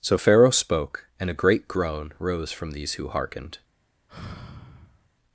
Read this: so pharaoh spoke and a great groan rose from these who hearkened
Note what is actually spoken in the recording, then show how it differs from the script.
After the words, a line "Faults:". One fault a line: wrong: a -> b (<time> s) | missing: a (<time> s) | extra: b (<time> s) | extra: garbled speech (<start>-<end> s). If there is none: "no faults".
so pharaoh spoke and a great groan rose from these who hearkened
Faults:
no faults